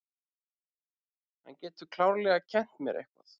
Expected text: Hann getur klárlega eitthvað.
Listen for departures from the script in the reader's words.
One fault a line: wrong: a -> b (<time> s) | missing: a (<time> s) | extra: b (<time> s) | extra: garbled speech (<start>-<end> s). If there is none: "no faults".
extra: kennt mér (2.5 s)